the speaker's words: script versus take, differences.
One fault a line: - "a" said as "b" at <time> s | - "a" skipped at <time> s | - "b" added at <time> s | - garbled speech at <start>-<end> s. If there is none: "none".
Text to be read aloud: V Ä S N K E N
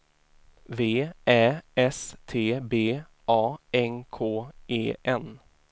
- "T B A" added at 2.2 s